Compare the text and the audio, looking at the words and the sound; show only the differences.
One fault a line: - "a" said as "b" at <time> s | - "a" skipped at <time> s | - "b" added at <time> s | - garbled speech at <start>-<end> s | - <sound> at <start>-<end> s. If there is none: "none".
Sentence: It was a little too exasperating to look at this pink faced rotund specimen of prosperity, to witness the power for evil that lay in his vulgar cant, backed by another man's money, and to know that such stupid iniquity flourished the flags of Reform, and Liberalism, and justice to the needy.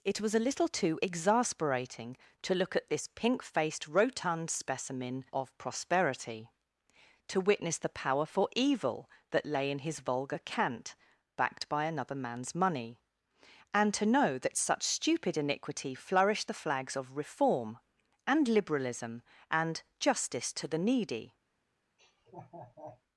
- laugh at 22.0-23.0 s